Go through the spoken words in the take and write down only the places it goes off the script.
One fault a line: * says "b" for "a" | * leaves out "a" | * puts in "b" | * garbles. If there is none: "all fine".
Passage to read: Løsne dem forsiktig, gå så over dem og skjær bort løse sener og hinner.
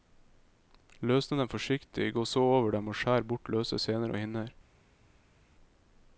all fine